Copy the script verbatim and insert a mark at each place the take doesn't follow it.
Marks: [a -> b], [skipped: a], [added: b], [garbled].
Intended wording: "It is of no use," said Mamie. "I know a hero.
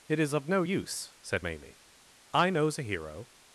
"It is of no use," said Mamie. "I [know -> knows] a hero.